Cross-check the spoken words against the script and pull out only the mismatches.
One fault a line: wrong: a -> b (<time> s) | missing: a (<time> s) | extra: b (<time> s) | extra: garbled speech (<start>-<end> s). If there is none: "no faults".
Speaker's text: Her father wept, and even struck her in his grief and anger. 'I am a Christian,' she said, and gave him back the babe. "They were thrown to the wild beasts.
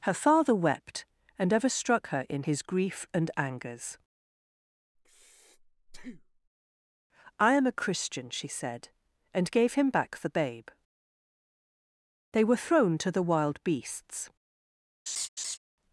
wrong: even -> ever (1.5 s)
wrong: anger -> angers (3.4 s)